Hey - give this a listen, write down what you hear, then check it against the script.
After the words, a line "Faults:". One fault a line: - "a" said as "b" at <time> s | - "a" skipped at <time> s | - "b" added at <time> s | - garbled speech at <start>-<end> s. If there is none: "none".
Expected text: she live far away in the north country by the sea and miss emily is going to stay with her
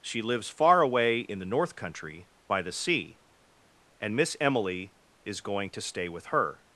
she lives far away in the north country by the sea and miss emily is going to stay with her
Faults:
- "live" said as "lives" at 0.2 s